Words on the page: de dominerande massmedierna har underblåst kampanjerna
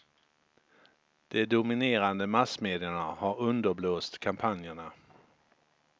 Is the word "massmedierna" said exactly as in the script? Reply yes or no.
yes